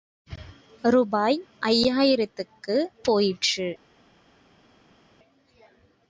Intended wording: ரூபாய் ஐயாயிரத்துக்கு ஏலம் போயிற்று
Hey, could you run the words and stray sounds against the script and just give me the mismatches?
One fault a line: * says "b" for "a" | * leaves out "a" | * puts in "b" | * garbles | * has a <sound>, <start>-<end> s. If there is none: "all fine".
* leaves out "ஏலம்"